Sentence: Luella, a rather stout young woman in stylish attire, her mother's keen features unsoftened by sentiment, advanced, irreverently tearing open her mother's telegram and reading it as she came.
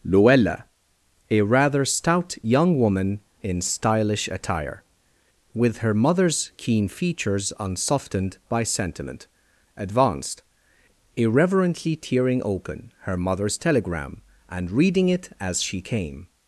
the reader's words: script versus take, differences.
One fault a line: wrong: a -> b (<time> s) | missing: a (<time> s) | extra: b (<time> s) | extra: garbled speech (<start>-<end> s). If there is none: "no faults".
extra: with (5.5 s)